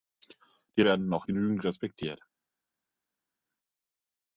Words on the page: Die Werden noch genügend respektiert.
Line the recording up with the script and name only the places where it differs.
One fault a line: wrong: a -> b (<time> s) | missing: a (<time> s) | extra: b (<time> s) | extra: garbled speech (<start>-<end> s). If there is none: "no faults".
no faults